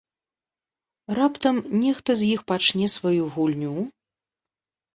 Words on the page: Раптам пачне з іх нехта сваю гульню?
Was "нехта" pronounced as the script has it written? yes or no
no